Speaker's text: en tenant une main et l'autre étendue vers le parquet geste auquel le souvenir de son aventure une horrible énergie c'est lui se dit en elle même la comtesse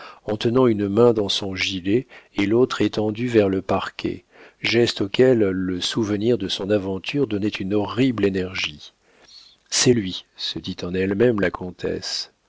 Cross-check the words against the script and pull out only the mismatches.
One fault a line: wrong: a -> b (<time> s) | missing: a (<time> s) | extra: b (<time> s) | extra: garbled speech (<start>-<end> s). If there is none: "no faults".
extra: dans son gilet (1.1 s)
extra: donnait (7.3 s)